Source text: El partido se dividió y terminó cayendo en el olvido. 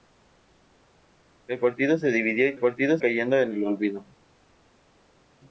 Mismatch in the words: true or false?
true